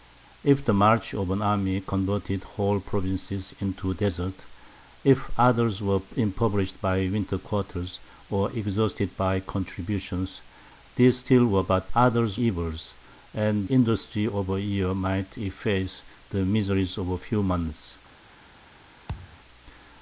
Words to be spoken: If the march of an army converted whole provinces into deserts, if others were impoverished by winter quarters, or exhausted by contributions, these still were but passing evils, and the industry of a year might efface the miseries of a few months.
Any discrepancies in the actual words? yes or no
yes